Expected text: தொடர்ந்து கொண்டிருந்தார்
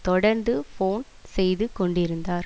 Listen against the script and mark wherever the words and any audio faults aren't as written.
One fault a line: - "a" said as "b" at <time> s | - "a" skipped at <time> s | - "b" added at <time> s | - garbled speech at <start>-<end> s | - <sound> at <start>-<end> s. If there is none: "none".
- "போன் செய்து" added at 0.8 s